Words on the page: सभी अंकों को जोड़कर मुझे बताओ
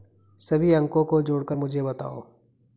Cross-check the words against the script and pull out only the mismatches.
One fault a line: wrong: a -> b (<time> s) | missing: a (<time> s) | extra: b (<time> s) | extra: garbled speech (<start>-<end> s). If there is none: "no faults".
no faults